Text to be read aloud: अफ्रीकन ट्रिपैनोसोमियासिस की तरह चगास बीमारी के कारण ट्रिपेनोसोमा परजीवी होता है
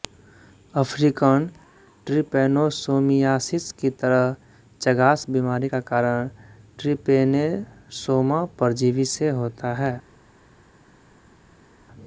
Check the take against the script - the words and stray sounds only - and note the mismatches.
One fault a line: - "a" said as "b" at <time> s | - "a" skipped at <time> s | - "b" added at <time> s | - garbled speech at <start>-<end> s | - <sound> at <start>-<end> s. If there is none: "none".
- "के" said as "का" at 5.7 s
- "से" added at 9.1 s